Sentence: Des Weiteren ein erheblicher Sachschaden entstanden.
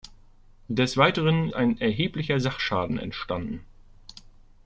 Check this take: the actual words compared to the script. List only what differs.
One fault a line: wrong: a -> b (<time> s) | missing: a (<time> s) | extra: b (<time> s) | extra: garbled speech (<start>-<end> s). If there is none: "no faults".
no faults